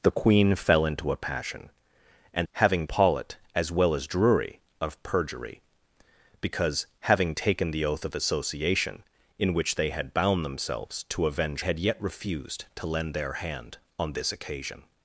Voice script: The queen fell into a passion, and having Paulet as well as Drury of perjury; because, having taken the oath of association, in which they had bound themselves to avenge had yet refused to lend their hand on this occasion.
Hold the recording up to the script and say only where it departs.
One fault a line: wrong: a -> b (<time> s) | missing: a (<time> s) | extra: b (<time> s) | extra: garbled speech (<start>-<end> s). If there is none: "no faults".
no faults